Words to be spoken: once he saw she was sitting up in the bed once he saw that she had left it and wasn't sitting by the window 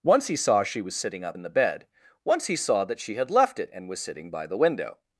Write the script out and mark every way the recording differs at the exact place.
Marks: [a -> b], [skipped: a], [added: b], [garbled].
once he saw she was sitting up in the bed once he saw that she had left it and [wasn't -> was] sitting by the window